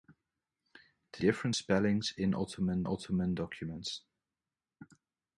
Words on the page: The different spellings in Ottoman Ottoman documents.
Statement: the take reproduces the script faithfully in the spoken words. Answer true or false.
true